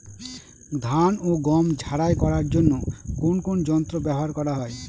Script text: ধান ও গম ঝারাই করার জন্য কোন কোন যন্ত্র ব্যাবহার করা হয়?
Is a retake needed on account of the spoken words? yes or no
no